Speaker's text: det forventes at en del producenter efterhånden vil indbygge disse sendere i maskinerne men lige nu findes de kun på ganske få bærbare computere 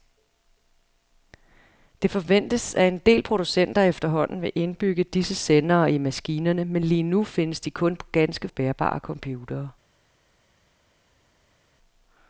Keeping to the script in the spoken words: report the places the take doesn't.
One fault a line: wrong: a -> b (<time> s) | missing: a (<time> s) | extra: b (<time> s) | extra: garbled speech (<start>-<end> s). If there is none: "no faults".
missing: få (8.5 s)